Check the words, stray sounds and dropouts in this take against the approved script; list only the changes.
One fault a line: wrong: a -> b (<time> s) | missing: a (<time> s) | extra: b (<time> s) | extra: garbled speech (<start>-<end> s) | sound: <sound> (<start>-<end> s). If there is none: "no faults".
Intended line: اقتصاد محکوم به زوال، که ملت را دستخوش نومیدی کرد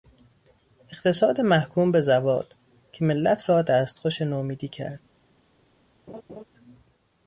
sound: laugh (6.1-6.4 s)